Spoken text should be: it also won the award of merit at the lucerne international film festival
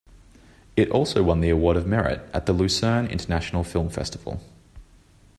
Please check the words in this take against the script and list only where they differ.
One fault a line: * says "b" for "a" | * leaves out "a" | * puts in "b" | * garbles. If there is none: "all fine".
all fine